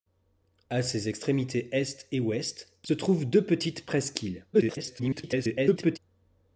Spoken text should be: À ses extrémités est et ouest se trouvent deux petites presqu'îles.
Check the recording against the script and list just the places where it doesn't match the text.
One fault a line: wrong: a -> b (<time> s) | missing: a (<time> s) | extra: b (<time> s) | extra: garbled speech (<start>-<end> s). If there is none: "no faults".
extra: garbled speech (4.5-6.0 s)